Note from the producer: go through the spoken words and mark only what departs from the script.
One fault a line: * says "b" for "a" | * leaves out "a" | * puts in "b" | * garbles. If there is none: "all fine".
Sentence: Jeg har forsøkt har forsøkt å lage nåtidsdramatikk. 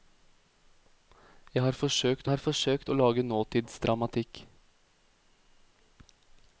all fine